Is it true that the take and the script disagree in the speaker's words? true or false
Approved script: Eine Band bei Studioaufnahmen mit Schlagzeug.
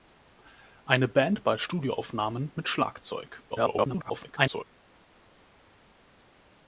true